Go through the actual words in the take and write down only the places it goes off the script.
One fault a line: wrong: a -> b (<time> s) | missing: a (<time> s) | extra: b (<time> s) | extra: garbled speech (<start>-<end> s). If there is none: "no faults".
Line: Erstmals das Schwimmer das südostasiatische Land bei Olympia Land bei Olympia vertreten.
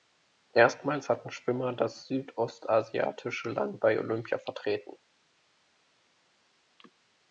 wrong: das -> hatten (1.1 s)
missing: Land bei Olympia (4.4 s)